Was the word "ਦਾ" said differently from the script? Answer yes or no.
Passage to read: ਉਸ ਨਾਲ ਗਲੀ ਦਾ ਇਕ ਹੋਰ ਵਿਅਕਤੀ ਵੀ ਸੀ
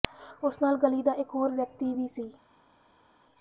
no